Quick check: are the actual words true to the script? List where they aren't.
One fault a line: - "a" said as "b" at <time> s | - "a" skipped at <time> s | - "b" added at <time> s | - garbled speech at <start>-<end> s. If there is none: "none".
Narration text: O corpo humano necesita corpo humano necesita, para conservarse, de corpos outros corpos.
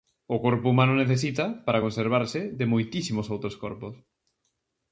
- "corpo humano necesita" skipped at 1.4 s
- "corpos" said as "moitísimos" at 2.7 s